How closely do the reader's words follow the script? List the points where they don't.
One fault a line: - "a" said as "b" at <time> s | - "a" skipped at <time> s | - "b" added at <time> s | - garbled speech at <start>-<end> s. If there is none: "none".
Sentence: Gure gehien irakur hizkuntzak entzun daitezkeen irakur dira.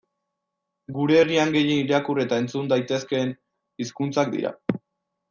- "herrian" added at 1.2 s
- "hizkuntzak" said as "eta" at 2.2 s
- "irakur" said as "hizkuntzak" at 3.8 s